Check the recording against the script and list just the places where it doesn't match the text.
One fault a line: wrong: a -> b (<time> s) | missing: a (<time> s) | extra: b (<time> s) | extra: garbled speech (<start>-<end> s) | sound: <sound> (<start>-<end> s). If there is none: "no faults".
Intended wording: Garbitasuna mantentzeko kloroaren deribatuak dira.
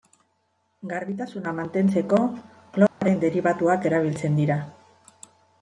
sound: dropout (2.9-3.0 s)
extra: erabiltzen (3.9 s)